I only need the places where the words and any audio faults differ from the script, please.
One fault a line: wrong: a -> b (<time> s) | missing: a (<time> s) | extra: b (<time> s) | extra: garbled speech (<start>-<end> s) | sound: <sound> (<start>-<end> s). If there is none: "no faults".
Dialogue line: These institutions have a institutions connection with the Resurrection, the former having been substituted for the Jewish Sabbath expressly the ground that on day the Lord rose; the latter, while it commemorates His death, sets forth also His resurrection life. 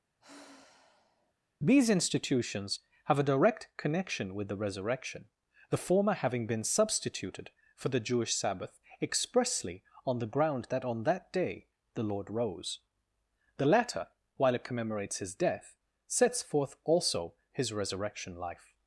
sound: sigh (0.2-1.3 s)
wrong: institutions -> direct (3.3 s)
extra: on (10.0 s)
extra: that (11.0 s)